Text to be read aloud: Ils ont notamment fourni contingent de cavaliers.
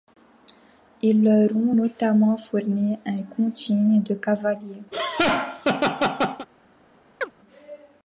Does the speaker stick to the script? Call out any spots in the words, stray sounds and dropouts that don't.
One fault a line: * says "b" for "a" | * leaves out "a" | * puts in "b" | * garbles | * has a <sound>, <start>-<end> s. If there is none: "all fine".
* puts in "leur"
* puts in "un"
* has a laugh, 4.9-6.5 s
* has a chirp, 7.2-7.3 s